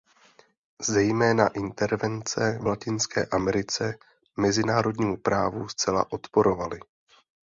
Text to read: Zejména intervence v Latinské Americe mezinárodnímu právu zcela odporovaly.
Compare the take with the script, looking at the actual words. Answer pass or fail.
pass